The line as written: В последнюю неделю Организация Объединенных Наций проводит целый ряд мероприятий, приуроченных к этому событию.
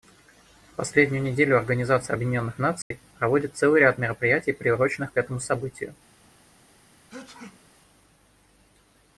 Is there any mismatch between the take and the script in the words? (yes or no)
no